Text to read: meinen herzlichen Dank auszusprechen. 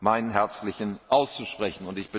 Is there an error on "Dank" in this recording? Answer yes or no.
yes